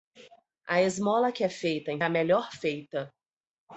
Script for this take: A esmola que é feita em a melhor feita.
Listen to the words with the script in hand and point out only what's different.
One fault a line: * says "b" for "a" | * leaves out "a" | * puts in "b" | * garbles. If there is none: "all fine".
all fine